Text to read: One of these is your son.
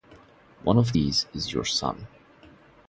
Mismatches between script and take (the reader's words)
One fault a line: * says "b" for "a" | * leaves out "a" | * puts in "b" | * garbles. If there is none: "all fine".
all fine